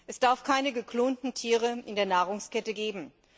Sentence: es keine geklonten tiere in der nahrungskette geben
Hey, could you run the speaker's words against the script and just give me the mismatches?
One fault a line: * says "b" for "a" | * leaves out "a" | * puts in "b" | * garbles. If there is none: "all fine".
* puts in "darf"